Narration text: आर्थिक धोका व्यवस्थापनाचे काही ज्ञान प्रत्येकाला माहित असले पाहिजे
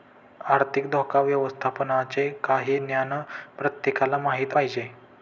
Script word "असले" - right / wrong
wrong